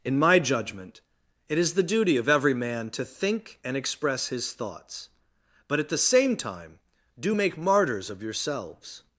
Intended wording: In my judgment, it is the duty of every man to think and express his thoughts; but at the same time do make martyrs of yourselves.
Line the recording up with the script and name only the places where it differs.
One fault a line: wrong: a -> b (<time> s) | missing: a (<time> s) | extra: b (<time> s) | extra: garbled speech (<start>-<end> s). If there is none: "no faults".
no faults